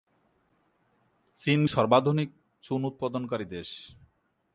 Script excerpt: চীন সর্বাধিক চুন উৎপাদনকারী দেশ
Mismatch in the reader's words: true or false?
false